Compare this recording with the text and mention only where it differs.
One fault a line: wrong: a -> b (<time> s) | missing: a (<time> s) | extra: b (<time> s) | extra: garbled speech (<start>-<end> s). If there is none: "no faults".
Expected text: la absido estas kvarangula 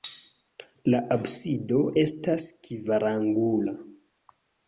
no faults